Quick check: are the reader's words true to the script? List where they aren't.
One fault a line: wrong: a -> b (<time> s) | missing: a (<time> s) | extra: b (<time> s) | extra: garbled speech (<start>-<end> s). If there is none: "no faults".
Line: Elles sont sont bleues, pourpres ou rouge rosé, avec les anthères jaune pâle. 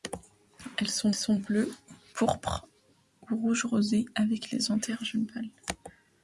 no faults